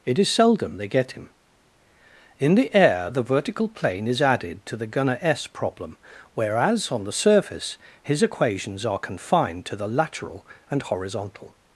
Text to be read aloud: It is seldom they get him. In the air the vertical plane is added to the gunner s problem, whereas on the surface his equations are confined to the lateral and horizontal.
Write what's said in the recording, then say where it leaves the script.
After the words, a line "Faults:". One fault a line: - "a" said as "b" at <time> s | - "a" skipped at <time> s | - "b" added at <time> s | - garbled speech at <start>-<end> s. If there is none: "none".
It is seldom they get him. In the air the vertical plane is added to the gunner s problem, whereas on the surface his equations are confined to the lateral and horizontal.
Faults:
none